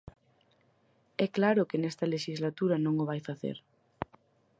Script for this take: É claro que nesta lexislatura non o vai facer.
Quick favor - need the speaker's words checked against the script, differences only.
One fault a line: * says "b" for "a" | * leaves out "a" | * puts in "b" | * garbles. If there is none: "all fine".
all fine